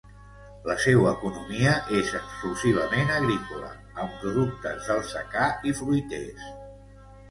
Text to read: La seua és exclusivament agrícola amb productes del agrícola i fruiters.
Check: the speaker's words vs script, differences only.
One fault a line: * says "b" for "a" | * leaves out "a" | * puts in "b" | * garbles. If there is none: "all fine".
* puts in "economia"
* says "secà" for "agrícola"